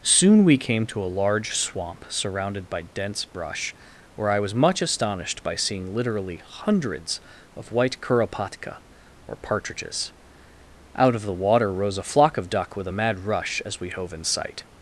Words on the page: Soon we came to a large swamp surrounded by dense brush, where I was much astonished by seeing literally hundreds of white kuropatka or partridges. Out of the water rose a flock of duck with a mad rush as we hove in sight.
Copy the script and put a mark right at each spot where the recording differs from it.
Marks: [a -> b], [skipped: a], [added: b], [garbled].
Soon we came to a large swamp surrounded by dense brush, where I was much astonished by seeing literally hundreds of white kuropatka or partridges. Out of the water rose a flock of duck with a mad rush as we hove in sight.